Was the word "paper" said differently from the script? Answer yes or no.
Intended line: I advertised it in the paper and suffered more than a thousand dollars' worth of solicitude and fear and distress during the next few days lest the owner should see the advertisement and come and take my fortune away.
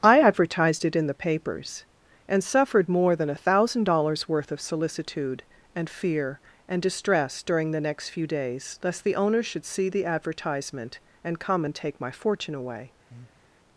yes